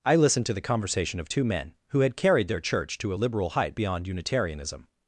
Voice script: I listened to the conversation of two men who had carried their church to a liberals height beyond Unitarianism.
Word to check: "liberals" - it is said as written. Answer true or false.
false